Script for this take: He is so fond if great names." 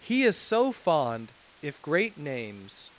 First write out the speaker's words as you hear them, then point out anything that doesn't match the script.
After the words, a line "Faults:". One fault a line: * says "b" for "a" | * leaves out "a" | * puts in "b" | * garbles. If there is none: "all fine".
He is so fond if great names."
Faults:
all fine